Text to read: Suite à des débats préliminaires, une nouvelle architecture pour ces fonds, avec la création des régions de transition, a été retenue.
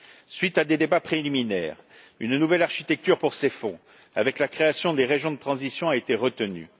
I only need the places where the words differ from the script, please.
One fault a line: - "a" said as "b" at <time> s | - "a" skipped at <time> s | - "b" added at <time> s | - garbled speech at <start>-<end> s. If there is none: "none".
none